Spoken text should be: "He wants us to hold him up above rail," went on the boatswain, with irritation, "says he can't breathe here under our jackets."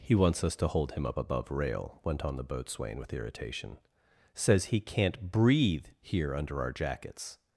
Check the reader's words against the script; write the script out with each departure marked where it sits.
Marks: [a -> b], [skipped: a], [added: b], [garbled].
"He wants us to hold him up above rail," went on the boatswain, with irritation, "says he can't breathe here under our jackets."